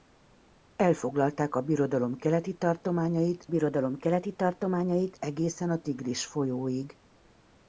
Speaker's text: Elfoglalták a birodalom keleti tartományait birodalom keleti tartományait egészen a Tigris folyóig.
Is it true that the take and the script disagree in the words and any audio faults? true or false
false